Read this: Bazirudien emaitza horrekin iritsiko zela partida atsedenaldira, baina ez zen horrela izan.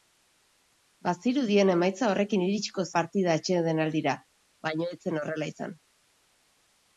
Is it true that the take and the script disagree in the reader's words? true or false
true